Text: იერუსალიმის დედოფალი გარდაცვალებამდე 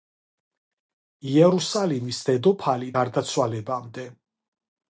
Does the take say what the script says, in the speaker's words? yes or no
yes